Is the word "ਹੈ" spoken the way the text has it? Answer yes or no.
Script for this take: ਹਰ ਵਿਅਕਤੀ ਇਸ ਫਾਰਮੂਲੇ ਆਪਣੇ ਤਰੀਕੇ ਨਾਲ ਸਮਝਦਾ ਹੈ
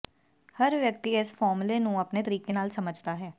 yes